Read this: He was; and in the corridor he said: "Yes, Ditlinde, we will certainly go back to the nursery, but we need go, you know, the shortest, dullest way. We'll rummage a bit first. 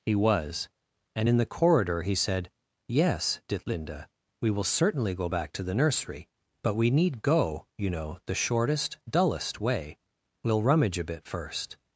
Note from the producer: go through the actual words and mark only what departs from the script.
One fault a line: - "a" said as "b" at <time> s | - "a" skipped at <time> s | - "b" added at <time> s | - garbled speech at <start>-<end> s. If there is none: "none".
none